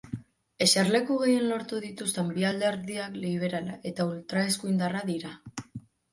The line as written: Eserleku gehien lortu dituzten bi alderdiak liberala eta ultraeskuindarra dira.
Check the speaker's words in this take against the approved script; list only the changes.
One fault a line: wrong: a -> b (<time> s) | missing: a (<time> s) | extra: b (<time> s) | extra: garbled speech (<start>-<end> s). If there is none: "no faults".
no faults